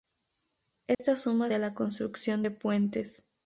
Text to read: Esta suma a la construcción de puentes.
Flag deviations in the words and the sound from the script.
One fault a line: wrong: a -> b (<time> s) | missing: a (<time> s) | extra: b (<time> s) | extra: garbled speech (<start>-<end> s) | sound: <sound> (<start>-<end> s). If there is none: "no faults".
sound: dropout (0.9-1.0 s)